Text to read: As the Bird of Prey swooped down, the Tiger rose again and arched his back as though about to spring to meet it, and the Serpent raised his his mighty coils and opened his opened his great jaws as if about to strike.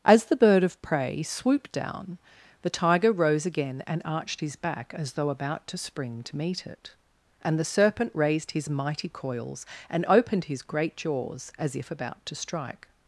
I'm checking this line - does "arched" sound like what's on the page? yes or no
yes